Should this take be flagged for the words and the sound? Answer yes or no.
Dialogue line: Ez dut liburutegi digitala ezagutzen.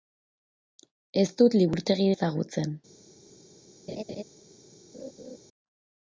yes